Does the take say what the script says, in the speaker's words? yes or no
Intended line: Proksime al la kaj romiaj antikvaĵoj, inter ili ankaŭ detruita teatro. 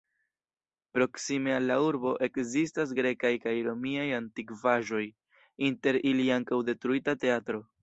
no